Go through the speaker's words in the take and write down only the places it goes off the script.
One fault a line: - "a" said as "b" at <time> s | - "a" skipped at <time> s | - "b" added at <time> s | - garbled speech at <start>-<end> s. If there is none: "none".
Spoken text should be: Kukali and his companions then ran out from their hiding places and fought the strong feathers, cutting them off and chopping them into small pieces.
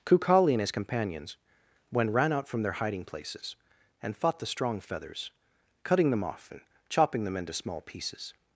- "then" said as "when" at 1.9 s